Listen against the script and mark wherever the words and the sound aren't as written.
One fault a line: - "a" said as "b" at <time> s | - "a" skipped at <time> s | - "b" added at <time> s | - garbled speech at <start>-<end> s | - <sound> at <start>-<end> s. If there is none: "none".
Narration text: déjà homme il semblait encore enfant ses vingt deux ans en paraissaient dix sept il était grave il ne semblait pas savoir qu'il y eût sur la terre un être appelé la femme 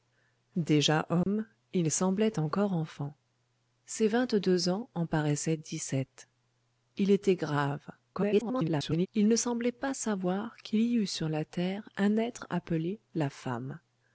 - dropout at 1.2-1.3 s
- garbled speech at 8.1-9.1 s